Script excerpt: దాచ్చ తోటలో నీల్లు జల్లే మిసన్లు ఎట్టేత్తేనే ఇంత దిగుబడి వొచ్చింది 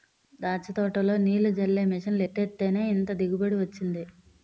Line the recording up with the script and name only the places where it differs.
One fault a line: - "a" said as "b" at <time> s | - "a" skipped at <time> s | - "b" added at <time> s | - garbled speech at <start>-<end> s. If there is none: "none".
none